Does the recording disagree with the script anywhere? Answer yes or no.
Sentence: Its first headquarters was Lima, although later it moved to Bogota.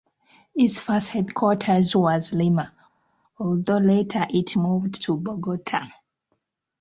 no